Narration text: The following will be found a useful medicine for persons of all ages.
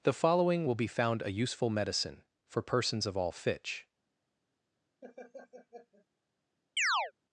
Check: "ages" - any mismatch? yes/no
yes